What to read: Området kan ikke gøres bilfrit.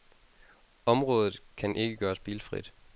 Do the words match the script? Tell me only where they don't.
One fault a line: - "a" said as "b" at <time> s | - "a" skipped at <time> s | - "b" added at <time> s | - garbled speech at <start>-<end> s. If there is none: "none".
none